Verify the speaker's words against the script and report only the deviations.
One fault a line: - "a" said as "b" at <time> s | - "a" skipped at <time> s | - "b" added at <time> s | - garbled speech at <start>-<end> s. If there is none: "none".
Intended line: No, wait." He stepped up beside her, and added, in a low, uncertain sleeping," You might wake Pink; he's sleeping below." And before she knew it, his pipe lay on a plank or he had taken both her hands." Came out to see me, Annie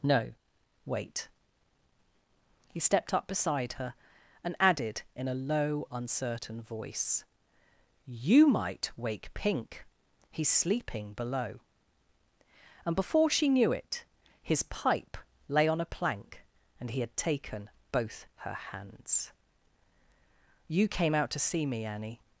- "sleeping" said as "voice" at 6.6 s
- "or" said as "and" at 16.8 s
- "You" added at 20.7 s